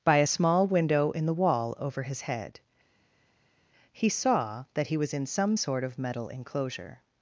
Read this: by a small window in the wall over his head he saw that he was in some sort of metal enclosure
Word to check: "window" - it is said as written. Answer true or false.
true